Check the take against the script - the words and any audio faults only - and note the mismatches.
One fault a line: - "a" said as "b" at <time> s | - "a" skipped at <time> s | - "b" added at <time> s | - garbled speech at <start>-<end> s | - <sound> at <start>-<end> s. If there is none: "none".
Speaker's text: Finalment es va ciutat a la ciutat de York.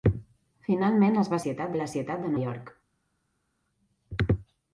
none